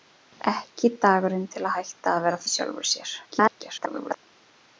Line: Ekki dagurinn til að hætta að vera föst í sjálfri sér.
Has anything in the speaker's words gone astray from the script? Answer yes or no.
yes